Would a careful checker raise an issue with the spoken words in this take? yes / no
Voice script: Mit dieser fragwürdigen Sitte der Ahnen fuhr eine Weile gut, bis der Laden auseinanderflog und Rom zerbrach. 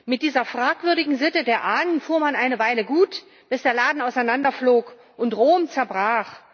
yes